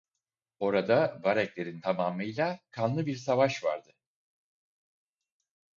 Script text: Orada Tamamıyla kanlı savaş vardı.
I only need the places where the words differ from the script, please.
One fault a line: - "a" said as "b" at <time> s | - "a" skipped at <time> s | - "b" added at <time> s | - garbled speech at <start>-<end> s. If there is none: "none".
- "Vareglerin" added at 1.2 s
- "bir" added at 3.1 s